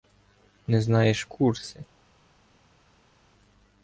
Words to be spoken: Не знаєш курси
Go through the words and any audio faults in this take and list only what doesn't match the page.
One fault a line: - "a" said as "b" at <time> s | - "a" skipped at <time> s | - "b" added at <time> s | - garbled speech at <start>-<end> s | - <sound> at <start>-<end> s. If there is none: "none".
none